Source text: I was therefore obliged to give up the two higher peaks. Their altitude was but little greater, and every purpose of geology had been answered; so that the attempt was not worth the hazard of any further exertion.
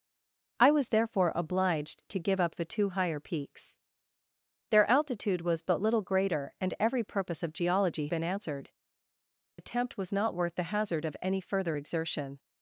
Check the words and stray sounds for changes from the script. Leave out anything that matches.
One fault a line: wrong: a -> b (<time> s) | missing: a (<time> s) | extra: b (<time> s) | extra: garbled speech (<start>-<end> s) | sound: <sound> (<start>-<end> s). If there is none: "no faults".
missing: had (8.1 s)
missing: so that the (8.7 s)